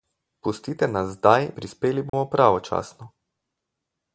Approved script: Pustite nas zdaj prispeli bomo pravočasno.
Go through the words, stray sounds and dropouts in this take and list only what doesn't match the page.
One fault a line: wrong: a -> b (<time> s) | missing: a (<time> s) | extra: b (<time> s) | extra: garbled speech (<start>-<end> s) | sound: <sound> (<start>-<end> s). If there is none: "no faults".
sound: dropout (2.1-2.1 s)